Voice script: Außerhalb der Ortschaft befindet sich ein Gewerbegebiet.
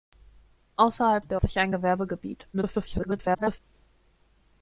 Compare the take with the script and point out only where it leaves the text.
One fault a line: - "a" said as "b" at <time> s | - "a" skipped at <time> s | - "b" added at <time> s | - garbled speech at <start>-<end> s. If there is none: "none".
- "Ortschaft befindet" skipped at 1.4 s
- garbled speech at 2.5-3.6 s